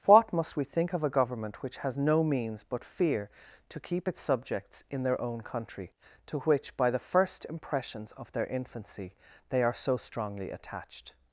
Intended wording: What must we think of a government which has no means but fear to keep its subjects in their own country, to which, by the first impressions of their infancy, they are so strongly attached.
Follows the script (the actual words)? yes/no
yes